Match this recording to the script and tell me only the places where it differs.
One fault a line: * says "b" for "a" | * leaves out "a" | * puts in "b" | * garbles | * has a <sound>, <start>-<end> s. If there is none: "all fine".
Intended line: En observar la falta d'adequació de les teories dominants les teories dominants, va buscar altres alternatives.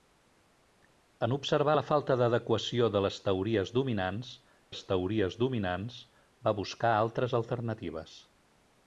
all fine